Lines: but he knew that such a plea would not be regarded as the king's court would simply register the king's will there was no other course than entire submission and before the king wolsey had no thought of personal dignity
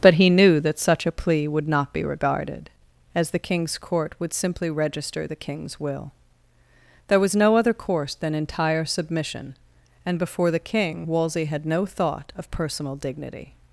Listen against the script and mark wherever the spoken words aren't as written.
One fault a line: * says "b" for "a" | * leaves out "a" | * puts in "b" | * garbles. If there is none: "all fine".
all fine